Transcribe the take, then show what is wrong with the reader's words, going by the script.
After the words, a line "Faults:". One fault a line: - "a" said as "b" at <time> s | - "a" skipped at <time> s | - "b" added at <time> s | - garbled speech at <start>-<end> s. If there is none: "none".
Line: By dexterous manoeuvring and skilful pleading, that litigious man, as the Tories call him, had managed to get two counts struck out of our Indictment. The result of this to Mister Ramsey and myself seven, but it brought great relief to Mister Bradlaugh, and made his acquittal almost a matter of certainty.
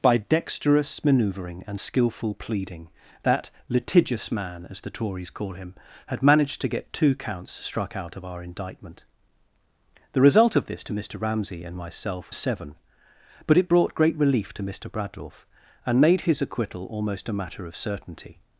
By dexterous manoeuvring and skilful pleading, that litigious man, as the Tories call him, had managed to get two counts struck out of our Indictment. The result of this to Mister Ramsey and myself seven, but it brought great relief to Mister Bradlaugh, and made his acquittal almost a matter of certainty.
Faults:
none